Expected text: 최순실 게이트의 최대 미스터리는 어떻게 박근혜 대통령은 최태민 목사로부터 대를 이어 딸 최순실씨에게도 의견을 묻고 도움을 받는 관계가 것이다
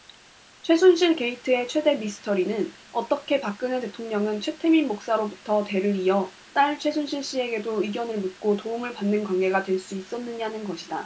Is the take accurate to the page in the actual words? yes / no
no